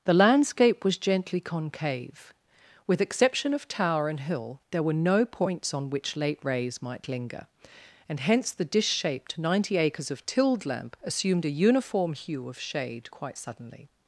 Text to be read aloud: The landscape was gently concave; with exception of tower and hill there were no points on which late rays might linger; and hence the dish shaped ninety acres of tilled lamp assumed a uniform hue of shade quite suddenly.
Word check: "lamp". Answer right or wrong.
right